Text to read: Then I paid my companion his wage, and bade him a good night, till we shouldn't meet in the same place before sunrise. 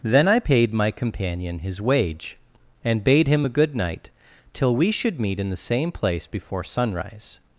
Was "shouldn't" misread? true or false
true